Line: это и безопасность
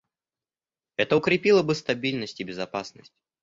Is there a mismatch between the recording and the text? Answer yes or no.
yes